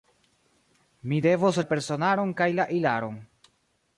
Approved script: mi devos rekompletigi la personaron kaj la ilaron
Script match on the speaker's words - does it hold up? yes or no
no